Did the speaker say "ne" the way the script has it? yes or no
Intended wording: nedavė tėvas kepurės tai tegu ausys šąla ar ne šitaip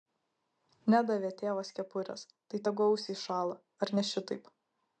yes